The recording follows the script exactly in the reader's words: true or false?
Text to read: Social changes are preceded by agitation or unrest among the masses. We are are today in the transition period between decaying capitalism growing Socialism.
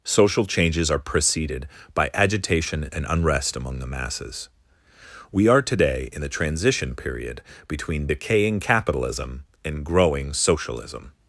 false